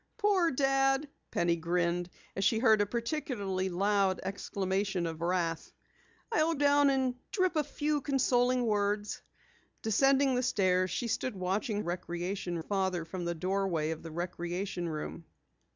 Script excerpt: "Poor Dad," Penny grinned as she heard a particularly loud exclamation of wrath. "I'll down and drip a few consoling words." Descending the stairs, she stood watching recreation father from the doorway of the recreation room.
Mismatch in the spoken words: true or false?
false